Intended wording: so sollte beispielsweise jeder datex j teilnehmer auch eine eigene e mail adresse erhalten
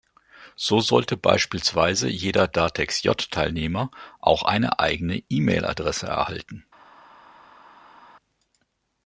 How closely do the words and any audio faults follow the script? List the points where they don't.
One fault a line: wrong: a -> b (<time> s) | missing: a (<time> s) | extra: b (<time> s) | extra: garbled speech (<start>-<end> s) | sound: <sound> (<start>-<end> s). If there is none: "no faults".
no faults